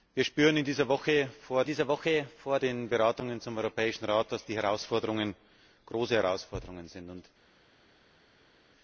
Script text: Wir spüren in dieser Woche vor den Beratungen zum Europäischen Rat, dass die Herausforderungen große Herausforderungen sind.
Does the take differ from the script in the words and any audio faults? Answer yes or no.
yes